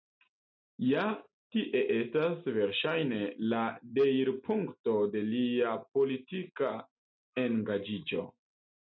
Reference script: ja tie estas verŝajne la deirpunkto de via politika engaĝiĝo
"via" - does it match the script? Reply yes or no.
no